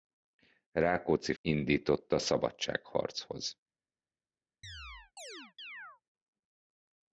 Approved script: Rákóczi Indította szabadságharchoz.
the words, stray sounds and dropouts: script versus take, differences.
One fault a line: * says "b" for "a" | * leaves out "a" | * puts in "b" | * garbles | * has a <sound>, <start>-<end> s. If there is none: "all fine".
* has a chirp, 4.6-6.0 s